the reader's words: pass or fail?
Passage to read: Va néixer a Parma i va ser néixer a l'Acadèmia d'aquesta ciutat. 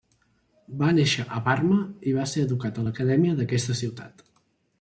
fail